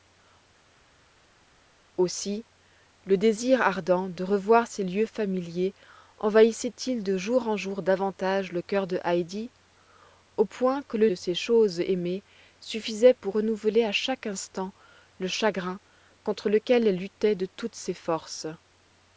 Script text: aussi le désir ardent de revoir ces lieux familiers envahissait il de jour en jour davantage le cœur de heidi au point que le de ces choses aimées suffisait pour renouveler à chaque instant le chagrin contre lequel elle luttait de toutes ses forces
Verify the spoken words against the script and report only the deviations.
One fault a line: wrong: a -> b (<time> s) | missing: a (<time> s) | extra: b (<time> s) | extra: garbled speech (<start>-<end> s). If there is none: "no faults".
no faults